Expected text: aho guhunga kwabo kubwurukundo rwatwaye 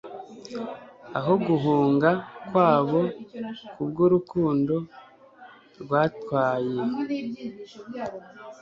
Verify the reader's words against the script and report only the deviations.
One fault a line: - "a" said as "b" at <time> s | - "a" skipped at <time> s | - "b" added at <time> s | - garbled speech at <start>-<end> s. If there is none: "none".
none